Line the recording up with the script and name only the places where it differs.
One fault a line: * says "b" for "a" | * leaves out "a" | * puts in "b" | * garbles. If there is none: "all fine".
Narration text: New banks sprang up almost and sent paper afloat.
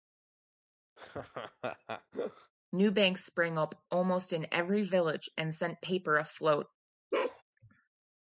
* puts in "in every village"